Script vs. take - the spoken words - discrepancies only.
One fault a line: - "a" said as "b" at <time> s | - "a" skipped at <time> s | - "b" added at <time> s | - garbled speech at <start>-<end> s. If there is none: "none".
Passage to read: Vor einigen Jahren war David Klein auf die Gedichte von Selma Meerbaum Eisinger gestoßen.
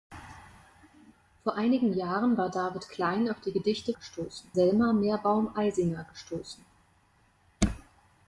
- "von" said as "gestoßen" at 4.0 s